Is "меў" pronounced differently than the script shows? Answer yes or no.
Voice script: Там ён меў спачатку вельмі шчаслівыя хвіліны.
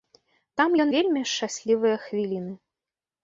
yes